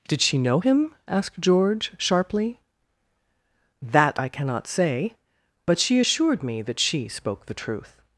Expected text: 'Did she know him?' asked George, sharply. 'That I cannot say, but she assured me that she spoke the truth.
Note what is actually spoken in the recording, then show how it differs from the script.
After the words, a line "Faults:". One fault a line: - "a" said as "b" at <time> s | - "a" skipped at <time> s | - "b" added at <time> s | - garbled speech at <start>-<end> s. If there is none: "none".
'Did she know him?' asked George, sharply. 'That I cannot say, but she assured me that she spoke the truth.
Faults:
none